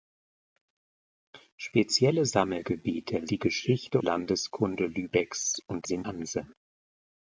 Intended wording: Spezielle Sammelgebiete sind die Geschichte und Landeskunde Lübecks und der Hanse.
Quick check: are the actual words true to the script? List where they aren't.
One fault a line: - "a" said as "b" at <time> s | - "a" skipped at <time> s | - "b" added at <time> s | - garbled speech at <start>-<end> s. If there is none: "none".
- "sind" skipped at 3.3 s
- "und" skipped at 4.0 s
- "der" said as "sind" at 5.8 s